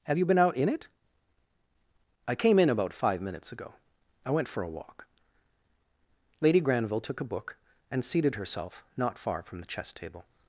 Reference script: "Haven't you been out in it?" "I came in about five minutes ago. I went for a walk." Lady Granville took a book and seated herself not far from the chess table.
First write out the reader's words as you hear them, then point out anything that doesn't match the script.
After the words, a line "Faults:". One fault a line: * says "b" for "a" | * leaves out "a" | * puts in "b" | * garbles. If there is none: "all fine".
"Have you been out in it?" "I came in about five minutes ago. I went for a walk." Lady Granville took a book and seated herself not far from the chess table.
Faults:
* says "Have" for "Haven't"